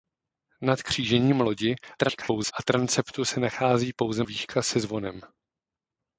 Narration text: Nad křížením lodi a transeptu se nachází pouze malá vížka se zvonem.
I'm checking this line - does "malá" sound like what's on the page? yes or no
no